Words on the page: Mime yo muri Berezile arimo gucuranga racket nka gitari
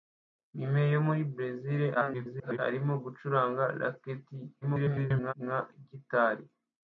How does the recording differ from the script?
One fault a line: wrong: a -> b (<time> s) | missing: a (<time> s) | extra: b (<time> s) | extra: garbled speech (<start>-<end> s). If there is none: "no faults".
extra: garbled speech (1.9-2.6 s)
extra: garbled speech (4.6-5.3 s)